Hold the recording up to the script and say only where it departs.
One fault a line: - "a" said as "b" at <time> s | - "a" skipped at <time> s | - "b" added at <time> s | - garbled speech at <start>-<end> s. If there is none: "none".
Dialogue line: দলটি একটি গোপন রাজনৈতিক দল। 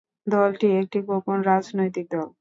none